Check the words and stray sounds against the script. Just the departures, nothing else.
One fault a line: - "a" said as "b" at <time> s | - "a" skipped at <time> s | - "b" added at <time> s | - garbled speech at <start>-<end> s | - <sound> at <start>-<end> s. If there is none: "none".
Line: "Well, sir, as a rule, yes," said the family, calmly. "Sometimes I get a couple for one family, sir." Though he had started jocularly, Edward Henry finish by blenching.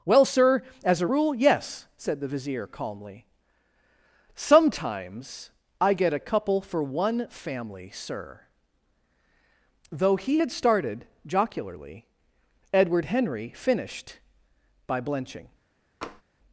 - "family" said as "vizier" at 2.3 s
- "finish" said as "finished" at 13.5 s
- tap at 16.0-16.2 s